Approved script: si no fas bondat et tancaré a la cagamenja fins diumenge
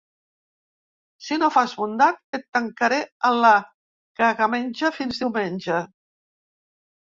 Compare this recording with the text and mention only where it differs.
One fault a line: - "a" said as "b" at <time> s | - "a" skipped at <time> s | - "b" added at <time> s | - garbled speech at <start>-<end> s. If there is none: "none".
none